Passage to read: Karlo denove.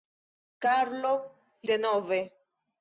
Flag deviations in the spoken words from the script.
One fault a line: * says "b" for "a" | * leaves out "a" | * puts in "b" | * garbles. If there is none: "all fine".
all fine